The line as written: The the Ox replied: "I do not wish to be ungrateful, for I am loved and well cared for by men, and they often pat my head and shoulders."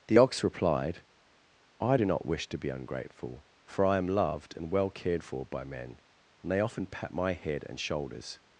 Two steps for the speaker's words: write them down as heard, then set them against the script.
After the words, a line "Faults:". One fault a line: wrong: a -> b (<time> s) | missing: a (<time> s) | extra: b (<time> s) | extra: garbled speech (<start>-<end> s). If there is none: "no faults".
The Ox replied: "I do not wish to be ungrateful, for I am loved and well cared for by men, and they often pat my head and shoulders."
Faults:
missing: the (0.2 s)